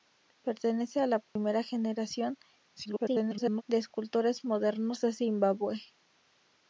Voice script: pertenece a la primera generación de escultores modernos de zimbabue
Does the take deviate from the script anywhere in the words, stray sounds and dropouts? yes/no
yes